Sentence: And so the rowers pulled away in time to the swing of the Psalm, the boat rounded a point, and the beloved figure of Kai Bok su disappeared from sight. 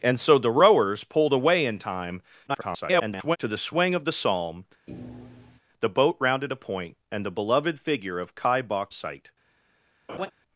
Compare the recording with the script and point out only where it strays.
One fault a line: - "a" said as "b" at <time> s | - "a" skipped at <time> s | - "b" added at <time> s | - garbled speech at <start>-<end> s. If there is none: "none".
- garbled speech at 2.5-3.4 s
- "su disappeared from" skipped at 8.9 s